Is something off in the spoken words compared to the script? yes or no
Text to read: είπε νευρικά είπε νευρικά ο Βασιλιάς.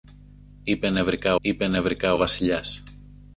no